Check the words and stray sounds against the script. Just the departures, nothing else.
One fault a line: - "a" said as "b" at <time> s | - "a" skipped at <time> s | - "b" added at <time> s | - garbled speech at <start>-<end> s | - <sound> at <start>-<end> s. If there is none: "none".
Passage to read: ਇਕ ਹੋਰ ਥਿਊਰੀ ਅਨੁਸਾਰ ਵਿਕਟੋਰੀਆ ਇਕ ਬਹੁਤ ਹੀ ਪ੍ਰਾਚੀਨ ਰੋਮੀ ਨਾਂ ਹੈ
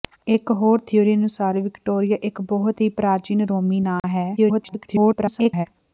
- dropout at 4.0-4.0 s
- garbled speech at 4.4-5.7 s